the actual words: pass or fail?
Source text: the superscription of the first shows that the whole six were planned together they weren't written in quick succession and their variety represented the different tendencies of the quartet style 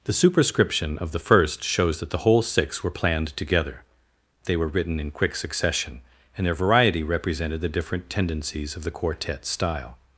fail